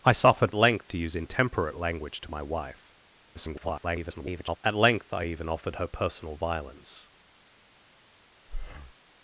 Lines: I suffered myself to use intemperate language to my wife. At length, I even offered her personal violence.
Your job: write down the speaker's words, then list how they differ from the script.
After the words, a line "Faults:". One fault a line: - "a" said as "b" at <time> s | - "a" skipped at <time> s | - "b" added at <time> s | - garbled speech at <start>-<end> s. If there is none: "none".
I suffered length to use intemperate language to my wife. [garbled] At length, I even offered her personal violence.
Faults:
- "myself" said as "length" at 0.6 s
- garbled speech at 3.3-4.6 s